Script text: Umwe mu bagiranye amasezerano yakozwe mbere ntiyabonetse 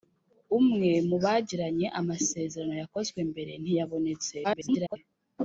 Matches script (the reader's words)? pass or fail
fail